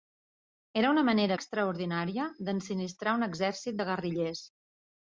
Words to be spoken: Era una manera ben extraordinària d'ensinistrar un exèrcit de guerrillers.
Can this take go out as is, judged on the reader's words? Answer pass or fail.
fail